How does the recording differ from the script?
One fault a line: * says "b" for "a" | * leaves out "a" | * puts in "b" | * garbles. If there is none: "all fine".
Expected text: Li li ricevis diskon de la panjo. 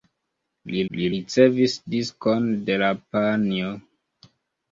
all fine